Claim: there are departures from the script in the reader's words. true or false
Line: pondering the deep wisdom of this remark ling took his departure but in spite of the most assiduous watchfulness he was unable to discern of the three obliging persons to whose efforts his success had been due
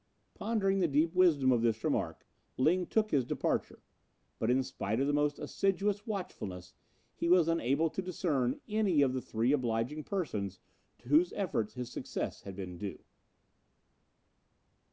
true